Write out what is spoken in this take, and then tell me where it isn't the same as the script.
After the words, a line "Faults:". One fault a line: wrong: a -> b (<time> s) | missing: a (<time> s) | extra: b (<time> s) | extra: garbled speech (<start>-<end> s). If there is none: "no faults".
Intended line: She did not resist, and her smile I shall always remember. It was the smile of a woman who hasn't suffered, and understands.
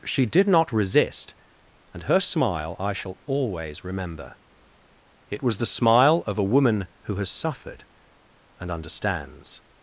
She did not resist, and her smile I shall always remember. It was the smile of a woman who has suffered, and understands.
Faults:
wrong: hasn't -> has (7.1 s)